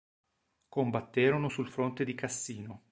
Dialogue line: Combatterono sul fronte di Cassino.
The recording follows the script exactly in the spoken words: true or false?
true